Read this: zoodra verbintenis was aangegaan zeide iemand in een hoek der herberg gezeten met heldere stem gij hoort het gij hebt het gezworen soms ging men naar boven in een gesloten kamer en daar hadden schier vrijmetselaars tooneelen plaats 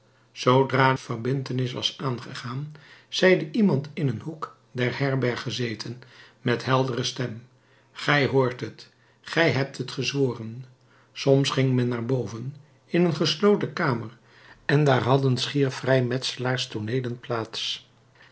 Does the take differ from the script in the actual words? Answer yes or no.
no